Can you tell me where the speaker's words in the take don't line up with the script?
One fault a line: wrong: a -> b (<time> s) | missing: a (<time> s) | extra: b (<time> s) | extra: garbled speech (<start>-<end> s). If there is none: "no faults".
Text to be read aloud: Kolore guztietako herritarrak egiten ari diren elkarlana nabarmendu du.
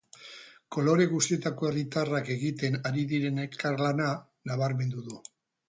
no faults